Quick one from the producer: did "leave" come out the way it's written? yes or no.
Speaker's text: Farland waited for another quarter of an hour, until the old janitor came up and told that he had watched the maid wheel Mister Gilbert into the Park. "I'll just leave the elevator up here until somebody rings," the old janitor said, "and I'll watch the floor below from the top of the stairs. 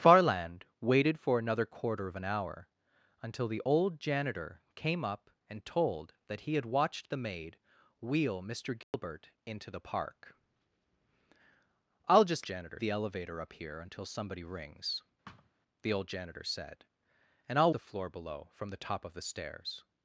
no